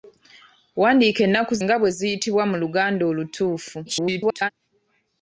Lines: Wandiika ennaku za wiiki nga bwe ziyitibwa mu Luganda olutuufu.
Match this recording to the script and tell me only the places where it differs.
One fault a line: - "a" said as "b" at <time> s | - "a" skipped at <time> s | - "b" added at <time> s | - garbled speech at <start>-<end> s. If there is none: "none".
- "za wiiki" skipped at 1.5 s
- garbled speech at 3.9-4.5 s